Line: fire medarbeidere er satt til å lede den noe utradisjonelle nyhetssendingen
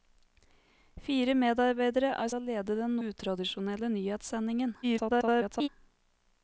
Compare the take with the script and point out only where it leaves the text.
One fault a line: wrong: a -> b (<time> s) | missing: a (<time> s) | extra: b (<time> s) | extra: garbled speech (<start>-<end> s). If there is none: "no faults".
missing: satt til (2.3 s)
missing: noe (3.0 s)
extra: garbled speech (4.8-5.7 s)